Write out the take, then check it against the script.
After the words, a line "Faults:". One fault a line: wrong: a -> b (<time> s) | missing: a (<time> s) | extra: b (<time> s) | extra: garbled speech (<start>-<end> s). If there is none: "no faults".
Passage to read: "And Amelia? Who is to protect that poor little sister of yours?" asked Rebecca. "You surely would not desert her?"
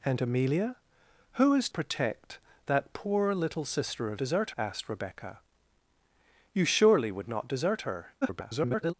"And Amelia? Who is protect that poor little sister of desert?" asked Rebecca. "You surely would not desert her?" [garbled]
Faults:
missing: to (1.7 s)
wrong: yours -> desert (4.2 s)
extra: garbled speech (8.2-8.9 s)